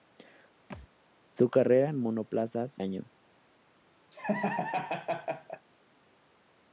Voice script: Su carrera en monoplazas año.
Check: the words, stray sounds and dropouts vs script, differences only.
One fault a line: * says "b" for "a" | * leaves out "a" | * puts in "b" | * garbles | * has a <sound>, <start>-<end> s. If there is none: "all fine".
* has a thud, 0.7-0.9 s
* has a laugh, 4.1-5.7 s